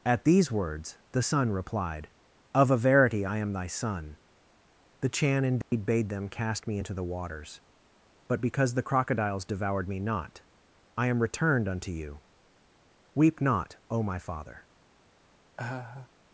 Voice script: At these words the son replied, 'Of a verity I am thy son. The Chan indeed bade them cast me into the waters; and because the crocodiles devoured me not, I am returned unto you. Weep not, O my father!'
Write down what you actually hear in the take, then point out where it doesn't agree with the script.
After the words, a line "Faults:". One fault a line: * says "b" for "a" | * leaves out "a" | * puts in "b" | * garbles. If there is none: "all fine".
At these words the son replied, 'Of a verity I am thy son. The Chan indeed bade them cast me into the waters; but because the crocodiles devoured me not, I am returned unto you. Weep not, O my father!'
Faults:
* says "but" for "and"